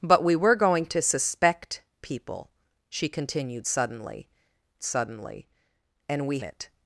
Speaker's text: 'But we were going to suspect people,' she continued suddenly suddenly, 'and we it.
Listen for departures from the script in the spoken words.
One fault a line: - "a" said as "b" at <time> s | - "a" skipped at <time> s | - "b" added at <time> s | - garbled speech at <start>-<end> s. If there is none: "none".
none